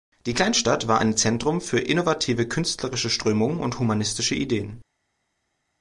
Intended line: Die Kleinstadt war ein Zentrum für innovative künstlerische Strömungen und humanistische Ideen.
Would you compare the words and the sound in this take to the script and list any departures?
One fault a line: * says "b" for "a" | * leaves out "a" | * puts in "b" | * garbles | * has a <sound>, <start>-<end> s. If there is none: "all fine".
all fine